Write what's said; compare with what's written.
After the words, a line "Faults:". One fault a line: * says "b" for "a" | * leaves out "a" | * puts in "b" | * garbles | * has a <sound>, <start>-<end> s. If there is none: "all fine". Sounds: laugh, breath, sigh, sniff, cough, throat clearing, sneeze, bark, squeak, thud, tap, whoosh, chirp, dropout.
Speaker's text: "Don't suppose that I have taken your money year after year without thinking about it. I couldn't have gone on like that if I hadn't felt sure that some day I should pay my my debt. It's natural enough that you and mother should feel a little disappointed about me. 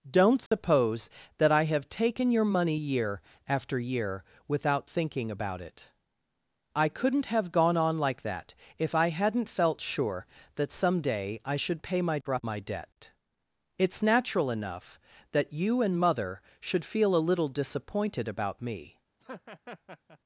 "Don't suppose that I have taken your money year after year without thinking about it. I couldn't have gone on like that if I hadn't felt sure that some day I should pay my my debt. It's natural enough that you and mother should feel a little disappointed about me.
Faults:
* has a dropout, 0.5-0.5 s
* has a laugh, 19.2-20.2 s